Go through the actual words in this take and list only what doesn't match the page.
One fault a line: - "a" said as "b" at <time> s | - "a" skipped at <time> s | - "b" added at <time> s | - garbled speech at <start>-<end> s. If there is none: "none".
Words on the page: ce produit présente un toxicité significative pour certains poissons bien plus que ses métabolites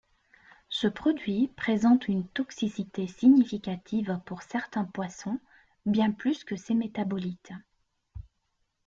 - "un" said as "une" at 2.1 s